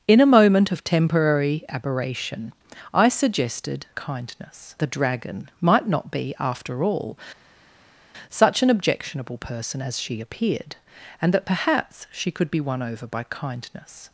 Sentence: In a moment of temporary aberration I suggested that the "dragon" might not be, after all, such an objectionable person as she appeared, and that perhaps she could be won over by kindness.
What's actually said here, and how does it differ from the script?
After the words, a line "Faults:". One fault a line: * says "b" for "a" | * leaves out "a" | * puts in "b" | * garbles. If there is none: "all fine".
In a moment of temporary aberration I suggested kindness the "dragon" might not be, after all, such an objectionable person as she appeared, and that perhaps she could be won over by kindness.
Faults:
* says "kindness" for "that"